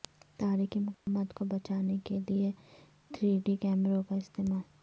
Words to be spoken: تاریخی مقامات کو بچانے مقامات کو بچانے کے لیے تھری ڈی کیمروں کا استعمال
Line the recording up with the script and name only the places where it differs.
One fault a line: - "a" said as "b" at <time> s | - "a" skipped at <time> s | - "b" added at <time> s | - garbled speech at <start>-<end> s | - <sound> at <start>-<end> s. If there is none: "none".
- dropout at 0.9-1.1 s
- "مقامات کو بچانے" skipped at 2.0 s